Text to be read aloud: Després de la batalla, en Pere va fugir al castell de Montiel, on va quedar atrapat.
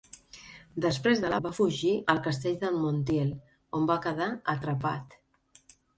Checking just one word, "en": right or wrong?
wrong